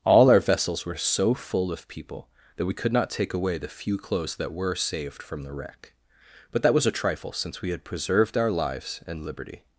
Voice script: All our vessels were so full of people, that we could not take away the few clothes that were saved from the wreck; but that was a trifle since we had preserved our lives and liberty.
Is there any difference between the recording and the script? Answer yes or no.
no